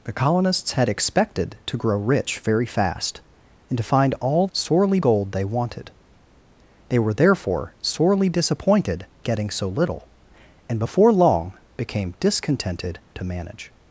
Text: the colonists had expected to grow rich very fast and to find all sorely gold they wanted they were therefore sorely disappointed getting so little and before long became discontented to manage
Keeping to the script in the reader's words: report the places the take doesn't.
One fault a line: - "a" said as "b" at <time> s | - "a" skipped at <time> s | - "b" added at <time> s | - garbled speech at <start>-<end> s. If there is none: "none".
none